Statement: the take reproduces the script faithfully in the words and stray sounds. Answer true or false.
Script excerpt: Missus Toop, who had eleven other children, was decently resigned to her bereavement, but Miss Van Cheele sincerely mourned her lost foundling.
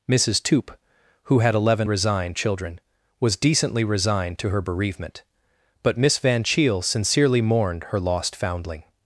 false